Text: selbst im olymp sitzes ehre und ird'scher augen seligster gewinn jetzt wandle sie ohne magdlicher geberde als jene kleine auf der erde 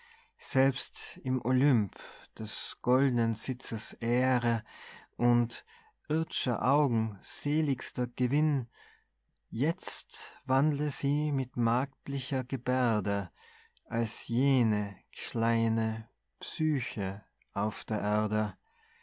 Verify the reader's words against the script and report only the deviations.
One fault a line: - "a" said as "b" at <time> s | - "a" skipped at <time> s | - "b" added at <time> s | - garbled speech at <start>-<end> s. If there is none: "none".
- "des goldnen" added at 2.4 s
- "ohne" said as "mit" at 11.3 s
- "psyche" added at 16.4 s